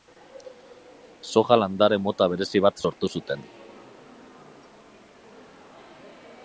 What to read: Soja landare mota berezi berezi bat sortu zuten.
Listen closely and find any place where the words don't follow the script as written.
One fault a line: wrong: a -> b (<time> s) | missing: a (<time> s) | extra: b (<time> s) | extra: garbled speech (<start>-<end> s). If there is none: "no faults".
missing: berezi (2.6 s)